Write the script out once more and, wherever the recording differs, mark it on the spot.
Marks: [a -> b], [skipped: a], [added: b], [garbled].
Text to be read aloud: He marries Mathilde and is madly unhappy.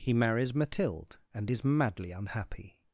He marries Mathilde and is madly unhappy.